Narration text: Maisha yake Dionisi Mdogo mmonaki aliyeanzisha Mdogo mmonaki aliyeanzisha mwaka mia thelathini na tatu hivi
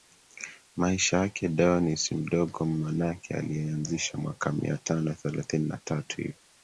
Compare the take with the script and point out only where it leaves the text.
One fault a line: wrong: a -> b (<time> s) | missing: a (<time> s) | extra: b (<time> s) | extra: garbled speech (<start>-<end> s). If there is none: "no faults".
missing: Mdogo mmonaki aliyeanzisha (4.2 s)
extra: tano (4.8 s)